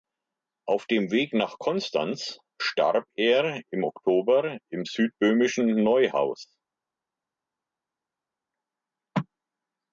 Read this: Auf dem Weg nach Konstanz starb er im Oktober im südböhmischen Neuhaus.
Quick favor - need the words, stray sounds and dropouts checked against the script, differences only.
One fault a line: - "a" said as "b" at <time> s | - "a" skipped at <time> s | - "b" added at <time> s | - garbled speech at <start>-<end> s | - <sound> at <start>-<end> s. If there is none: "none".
none